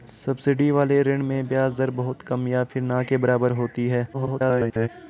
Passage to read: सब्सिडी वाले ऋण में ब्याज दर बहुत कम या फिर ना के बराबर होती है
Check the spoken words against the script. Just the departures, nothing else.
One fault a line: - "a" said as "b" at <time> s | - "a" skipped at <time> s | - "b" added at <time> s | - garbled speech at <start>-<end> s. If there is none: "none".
- garbled speech at 4.1-4.9 s